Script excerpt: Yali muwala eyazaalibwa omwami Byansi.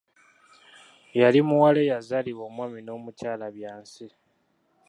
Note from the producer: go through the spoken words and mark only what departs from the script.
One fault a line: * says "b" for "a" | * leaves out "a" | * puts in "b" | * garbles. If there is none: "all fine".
* puts in "n'omukyala"